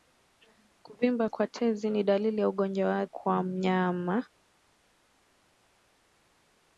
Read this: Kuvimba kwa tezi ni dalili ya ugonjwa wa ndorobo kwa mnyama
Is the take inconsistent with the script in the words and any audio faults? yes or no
yes